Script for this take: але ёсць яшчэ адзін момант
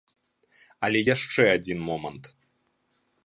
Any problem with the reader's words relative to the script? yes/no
yes